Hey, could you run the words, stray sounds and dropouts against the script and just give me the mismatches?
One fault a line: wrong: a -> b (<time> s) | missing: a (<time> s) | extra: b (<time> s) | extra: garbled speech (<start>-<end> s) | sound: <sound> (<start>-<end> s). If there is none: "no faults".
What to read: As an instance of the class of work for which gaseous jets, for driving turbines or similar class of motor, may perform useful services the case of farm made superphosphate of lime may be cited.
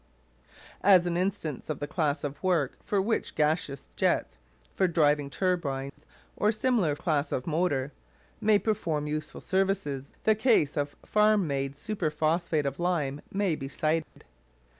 sound: dropout (5.9-6.0 s)
sound: dropout (14.0-14.2 s)